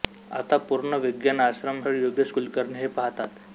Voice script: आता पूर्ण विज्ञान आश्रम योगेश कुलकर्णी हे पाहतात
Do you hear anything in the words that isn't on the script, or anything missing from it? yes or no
no